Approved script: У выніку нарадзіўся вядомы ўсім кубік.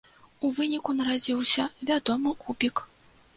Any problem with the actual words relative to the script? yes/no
yes